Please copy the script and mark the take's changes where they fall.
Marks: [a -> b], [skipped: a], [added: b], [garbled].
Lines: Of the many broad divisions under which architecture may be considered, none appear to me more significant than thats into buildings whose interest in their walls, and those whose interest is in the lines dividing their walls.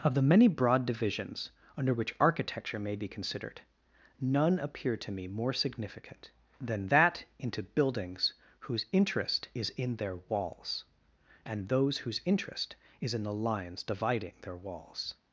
Of the many broad divisions under which architecture may be considered, none appear to me more significant than [thats -> that] into buildings whose interest [added: is] in their walls, and those whose interest is in the lines dividing their walls.